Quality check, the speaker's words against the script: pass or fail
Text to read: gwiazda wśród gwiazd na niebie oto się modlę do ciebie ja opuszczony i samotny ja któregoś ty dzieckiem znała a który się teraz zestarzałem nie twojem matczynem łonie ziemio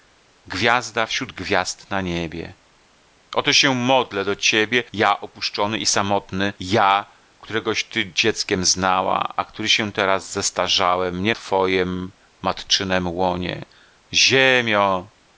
pass